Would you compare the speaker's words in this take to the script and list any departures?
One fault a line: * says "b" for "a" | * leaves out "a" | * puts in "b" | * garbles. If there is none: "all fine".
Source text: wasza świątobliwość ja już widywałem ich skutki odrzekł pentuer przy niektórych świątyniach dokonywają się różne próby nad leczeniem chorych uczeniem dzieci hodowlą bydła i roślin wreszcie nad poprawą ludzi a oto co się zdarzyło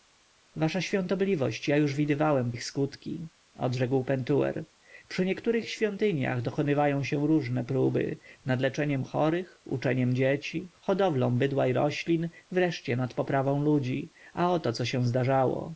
all fine